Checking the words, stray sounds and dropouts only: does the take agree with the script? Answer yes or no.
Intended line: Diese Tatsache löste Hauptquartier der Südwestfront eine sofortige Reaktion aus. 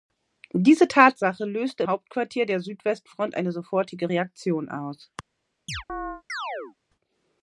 no